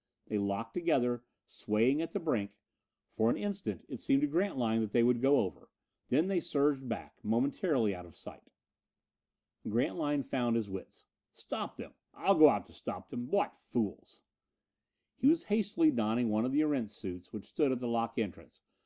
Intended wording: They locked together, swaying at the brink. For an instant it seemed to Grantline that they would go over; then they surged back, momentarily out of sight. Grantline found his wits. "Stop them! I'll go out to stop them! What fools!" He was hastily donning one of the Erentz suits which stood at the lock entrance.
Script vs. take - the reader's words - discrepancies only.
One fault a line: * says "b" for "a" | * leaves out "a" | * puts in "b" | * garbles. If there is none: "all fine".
all fine